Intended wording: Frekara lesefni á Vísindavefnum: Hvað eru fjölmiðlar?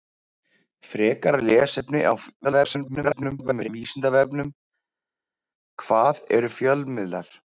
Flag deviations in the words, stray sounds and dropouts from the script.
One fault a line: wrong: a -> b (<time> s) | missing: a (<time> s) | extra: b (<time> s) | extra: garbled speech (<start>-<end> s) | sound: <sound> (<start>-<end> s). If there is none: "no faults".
extra: garbled speech (2.4-3.7 s)